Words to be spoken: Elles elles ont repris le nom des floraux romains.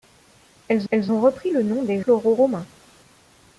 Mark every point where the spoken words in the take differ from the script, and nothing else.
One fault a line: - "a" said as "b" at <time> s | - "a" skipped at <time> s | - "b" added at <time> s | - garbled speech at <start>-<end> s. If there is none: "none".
none